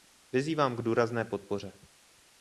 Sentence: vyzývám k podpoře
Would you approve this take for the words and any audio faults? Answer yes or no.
no